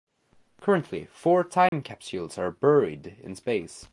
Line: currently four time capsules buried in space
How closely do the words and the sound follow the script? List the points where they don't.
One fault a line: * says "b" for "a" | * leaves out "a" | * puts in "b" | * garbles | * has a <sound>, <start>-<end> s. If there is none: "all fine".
* has a dropout, 1.7-1.7 s
* puts in "are"